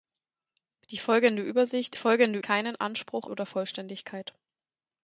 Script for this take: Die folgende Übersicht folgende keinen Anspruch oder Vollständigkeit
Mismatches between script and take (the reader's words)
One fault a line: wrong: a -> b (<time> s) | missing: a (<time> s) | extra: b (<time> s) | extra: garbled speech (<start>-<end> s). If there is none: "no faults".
no faults